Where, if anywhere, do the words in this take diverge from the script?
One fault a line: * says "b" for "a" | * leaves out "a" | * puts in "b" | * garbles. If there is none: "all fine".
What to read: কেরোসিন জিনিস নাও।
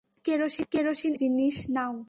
all fine